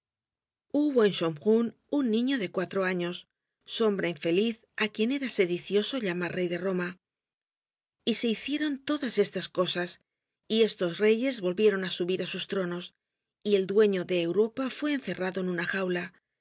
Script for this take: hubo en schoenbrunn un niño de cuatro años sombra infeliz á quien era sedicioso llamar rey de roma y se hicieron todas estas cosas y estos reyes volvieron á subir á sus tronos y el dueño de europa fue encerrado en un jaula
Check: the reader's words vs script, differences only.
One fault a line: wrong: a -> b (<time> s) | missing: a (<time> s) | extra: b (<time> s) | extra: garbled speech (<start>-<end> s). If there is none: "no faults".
wrong: un -> una (15.5 s)